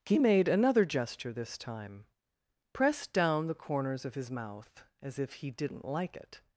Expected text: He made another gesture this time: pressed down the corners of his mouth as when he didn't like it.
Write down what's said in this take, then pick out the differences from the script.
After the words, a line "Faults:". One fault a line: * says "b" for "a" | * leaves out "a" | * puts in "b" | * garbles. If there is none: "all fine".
He made another gesture this time: pressed down the corners of his mouth as if he didn't like it.
Faults:
* says "if" for "when"